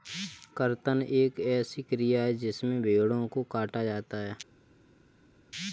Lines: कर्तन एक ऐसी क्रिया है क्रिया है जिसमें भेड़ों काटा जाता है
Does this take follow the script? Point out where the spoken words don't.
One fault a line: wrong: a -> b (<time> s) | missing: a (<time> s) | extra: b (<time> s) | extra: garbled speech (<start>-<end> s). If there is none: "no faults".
missing: क्रिया है (2.3 s)
extra: को (3.3 s)